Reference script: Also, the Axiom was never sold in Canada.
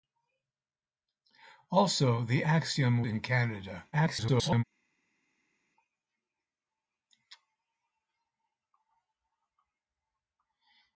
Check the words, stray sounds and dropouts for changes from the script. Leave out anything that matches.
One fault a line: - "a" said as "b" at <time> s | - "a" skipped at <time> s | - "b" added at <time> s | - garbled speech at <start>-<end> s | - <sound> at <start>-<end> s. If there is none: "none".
- "was never sold" skipped at 3.0 s
- garbled speech at 3.9-4.6 s